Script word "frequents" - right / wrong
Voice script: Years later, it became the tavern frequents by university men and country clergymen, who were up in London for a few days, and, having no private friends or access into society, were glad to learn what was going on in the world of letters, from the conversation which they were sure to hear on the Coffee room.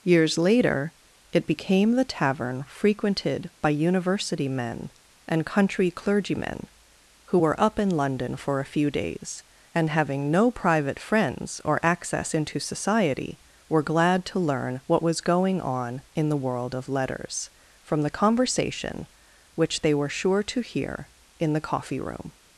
wrong